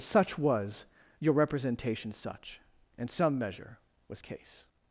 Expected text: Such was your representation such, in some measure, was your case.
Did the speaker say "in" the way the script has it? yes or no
no